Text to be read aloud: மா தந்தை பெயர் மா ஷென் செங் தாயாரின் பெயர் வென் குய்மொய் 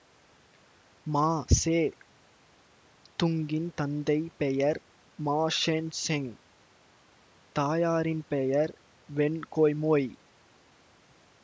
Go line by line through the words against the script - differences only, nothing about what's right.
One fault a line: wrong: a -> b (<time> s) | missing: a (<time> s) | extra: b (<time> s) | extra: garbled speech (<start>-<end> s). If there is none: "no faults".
extra: சே துங்கின் (1.5 s)